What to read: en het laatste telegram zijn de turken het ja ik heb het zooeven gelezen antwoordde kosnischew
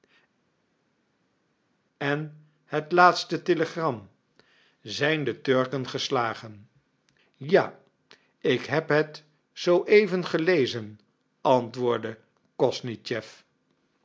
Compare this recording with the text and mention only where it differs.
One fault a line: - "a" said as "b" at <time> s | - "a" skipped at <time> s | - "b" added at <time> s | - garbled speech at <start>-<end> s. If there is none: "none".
- "het" said as "geslagen" at 5.9 s